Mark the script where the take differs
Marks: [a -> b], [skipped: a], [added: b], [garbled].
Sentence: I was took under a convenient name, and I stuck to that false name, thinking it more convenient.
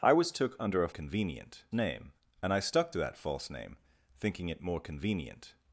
I was took under a convenient name, and I stuck to that false name, thinking it more convenient.